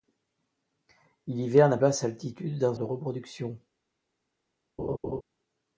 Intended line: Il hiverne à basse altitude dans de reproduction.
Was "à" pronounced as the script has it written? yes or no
yes